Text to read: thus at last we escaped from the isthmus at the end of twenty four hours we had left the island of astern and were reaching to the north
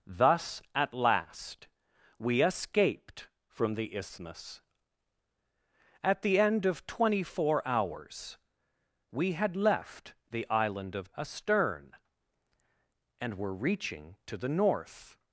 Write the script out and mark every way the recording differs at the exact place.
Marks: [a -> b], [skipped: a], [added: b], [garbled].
thus at last we escaped from the isthmus at the end of twenty four hours we had left the island of astern and were reaching to the north